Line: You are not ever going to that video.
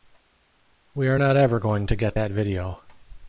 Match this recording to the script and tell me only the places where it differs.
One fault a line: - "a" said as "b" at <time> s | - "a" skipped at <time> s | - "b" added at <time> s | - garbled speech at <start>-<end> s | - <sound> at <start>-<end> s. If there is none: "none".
- "You" said as "We" at 0.9 s
- "get" added at 2.0 s